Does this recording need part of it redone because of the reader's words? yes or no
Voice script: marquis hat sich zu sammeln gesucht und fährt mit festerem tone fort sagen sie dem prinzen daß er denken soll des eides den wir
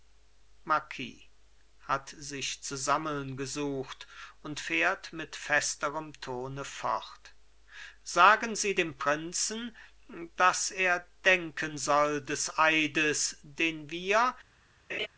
no